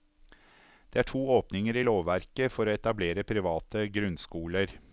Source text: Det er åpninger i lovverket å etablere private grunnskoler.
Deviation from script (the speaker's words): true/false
true